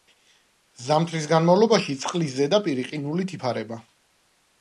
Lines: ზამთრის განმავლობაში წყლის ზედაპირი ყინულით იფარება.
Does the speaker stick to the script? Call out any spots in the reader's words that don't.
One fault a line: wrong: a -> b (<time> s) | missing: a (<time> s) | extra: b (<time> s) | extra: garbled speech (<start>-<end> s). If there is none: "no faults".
no faults